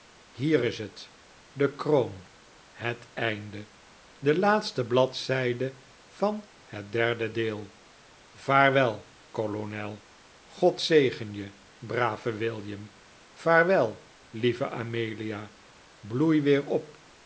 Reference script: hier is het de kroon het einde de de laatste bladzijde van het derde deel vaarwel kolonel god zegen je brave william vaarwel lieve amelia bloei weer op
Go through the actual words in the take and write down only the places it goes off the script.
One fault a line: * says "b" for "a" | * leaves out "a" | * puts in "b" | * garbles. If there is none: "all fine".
* leaves out "de"